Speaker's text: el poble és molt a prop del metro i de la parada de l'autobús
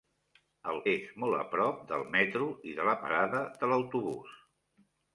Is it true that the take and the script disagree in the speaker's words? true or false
true